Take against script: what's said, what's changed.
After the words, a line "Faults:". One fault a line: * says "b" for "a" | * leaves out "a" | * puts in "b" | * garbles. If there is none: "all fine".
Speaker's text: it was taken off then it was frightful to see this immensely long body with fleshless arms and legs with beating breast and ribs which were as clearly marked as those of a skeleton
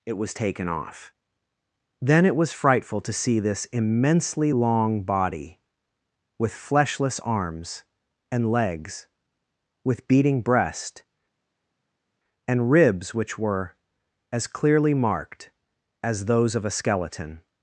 it was taken off then it was frightful to see this immensely long body with fleshless arms and legs with beating breast and ribs which were as clearly marked as those of a skeleton
Faults:
all fine